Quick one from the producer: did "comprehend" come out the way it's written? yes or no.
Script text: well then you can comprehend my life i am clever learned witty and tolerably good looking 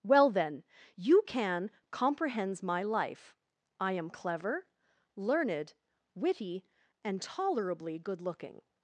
no